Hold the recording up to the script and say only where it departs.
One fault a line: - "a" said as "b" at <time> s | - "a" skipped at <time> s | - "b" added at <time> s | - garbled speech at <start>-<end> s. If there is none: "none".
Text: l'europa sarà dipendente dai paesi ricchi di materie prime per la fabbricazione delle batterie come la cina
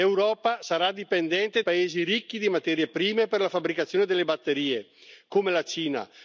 - "dai" skipped at 1.6 s